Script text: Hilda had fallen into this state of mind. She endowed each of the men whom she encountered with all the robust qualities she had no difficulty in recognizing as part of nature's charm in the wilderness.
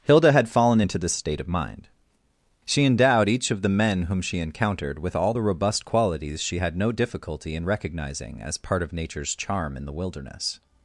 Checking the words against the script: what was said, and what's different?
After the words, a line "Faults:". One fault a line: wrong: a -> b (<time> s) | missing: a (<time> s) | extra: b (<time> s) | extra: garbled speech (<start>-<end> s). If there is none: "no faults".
Hilda had fallen into this state of mind. She endowed each of the men whom she encountered with all the robust qualities she had no difficulty in recognizing as part of nature's charm in the wilderness.
Faults:
no faults